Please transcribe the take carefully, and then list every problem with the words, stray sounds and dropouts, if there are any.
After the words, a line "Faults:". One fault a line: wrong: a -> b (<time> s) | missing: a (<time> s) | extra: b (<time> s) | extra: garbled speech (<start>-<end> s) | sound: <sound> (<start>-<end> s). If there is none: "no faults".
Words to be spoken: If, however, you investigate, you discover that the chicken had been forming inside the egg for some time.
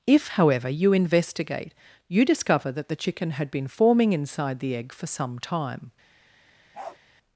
If, however, you investigate, you discover that the chicken had been forming inside the egg for some time.
Faults:
sound: bark (6.7-7.0 s)